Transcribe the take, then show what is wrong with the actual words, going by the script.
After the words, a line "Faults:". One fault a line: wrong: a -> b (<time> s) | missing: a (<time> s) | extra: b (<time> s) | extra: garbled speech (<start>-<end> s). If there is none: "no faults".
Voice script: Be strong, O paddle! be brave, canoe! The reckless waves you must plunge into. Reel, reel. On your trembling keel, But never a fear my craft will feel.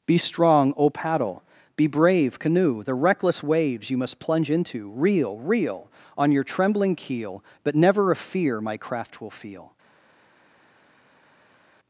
Be strong, O paddle! be brave, canoe! The reckless waves you must plunge into. Reel, reel. On your trembling keel, But never a fear my craft will feel.
Faults:
no faults